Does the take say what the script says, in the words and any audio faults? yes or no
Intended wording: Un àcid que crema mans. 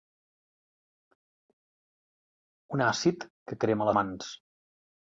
yes